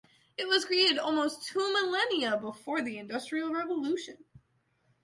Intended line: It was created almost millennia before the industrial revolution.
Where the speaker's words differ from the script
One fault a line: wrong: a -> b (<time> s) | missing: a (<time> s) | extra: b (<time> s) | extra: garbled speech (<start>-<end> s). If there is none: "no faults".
extra: two (1.5 s)